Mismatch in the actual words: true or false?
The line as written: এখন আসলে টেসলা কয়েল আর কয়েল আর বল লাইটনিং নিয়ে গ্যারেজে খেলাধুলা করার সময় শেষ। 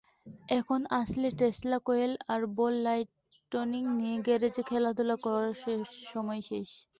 true